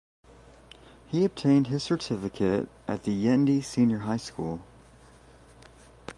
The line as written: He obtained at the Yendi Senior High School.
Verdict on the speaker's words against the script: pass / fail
fail